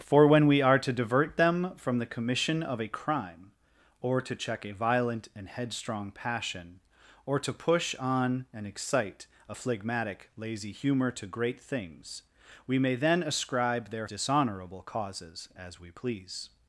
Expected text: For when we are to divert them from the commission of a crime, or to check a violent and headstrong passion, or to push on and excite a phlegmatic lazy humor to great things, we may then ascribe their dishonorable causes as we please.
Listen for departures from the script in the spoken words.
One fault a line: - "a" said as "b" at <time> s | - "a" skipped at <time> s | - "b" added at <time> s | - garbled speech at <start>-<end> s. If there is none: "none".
none